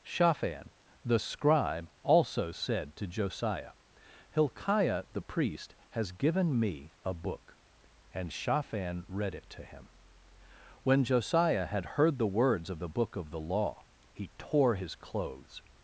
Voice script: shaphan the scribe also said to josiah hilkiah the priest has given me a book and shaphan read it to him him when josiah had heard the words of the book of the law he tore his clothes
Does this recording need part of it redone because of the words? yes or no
yes